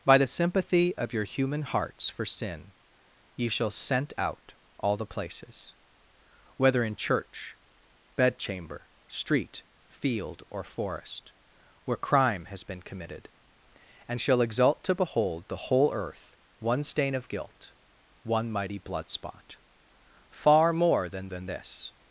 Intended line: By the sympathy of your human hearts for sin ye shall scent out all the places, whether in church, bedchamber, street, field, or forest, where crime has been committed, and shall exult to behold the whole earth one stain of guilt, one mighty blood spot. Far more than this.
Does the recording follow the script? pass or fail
fail